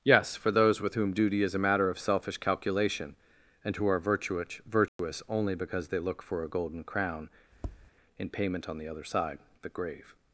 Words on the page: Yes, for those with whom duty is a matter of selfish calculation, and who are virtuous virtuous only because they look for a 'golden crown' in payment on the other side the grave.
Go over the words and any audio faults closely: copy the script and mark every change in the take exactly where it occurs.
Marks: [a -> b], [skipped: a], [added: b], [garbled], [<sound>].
Yes, for those with whom duty is a matter of selfish calculation, and who are virtuous virtuous [dropout] only because they look for a 'golden crown' [tap] in payment on the other side the grave.